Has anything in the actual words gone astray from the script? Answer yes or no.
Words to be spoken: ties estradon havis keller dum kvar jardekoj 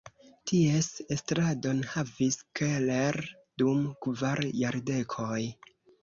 no